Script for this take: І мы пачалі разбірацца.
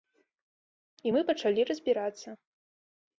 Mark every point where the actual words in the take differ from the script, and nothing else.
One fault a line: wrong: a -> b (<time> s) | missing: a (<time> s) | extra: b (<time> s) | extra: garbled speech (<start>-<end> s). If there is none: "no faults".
no faults